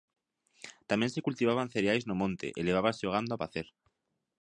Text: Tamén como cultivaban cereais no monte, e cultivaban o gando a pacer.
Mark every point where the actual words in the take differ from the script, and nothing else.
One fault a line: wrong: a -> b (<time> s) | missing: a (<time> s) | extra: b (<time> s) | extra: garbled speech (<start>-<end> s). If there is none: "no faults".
wrong: como -> se (1.1 s)
wrong: cultivaban -> levábase (2.7 s)